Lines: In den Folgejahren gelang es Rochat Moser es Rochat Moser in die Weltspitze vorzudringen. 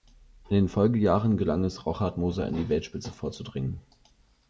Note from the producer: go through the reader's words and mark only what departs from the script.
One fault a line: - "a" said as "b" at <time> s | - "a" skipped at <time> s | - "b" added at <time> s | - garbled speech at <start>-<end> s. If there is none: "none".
- "es Rochat Moser" skipped at 2.5 s